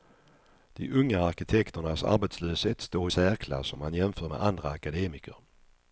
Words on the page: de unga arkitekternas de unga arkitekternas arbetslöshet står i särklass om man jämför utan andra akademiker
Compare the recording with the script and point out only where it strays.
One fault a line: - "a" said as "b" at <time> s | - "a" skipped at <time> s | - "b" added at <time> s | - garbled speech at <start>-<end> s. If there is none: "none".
- "de unga arkitekternas" skipped at 2.0 s
- "utan" said as "med" at 4.3 s